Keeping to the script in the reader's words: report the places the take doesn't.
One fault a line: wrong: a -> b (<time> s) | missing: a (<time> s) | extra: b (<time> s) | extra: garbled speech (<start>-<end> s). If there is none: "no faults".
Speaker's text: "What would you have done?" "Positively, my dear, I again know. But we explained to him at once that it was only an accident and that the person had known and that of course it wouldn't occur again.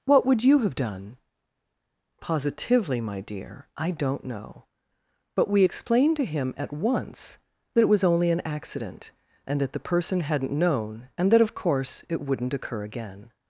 wrong: again -> don't (3.9 s)
wrong: had -> hadn't (10.2 s)